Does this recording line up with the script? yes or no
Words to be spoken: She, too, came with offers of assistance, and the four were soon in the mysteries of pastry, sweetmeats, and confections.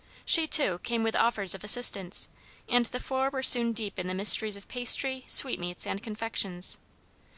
no